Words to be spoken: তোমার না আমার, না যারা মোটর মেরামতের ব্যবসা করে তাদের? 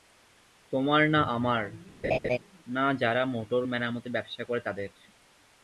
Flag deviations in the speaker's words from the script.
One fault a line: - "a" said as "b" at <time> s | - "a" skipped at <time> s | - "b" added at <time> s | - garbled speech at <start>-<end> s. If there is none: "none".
none